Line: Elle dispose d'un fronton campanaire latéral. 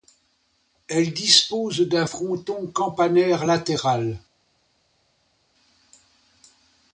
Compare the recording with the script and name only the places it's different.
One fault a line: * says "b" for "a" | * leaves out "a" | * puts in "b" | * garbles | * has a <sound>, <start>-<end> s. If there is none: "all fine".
all fine